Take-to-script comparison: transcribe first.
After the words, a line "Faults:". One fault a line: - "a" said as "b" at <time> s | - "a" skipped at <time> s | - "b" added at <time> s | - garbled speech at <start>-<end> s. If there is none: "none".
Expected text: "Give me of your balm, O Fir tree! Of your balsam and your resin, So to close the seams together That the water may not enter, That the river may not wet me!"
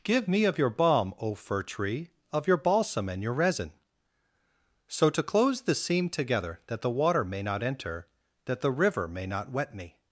"Give me of your balm, O Fir tree! Of your balsam and your resin, So to close the seam together That the water may not enter, That the river may not wet me!"
Faults:
- "seams" said as "seam" at 5.7 s